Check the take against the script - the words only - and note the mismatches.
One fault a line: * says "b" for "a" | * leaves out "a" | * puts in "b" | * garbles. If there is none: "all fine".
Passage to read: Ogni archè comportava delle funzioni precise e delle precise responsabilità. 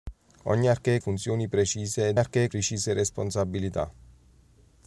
* leaves out "comportava delle"
* says "archè" for "delle"